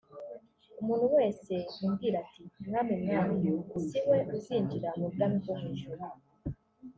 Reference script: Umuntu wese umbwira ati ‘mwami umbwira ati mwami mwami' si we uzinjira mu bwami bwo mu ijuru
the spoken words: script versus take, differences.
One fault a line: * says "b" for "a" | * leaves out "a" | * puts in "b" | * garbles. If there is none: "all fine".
* leaves out "umbwira ati mwami"